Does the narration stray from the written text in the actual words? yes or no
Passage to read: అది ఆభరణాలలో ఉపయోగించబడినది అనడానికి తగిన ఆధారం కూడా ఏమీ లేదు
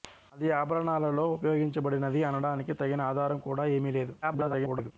yes